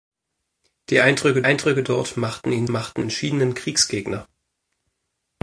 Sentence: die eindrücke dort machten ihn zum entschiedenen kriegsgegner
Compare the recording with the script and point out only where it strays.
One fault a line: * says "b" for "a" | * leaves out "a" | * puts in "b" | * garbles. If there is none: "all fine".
* puts in "eindrücke"
* says "machten" for "zum"